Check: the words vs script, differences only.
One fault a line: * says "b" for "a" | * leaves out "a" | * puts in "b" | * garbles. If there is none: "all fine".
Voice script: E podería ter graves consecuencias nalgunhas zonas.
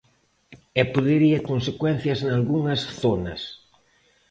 * leaves out "ter graves"